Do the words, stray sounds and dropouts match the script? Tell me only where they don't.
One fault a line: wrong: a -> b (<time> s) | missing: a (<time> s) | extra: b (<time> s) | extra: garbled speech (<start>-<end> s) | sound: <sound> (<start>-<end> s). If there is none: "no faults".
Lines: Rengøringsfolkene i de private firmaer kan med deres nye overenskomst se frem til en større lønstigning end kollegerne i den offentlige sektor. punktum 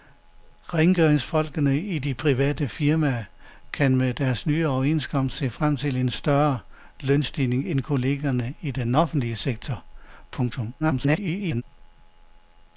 extra: garbled speech (10.8-11.6 s)